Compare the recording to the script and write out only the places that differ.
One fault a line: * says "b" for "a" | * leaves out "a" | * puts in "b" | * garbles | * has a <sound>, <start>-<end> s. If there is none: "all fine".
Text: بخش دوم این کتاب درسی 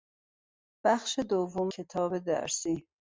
* leaves out "این"